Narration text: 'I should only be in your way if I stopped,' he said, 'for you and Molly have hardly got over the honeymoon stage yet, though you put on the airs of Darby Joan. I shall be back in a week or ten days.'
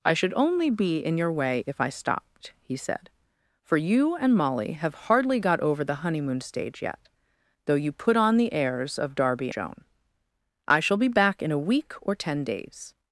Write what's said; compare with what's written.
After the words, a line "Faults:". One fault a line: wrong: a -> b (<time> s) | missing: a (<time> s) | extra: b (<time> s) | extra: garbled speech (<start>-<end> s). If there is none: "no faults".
'I should only be in your way if I stopped,' he said, 'for you and Molly have hardly got over the honeymoon stage yet, though you put on the airs of Darby Joan. I shall be back in a week or ten days.'
Faults:
no faults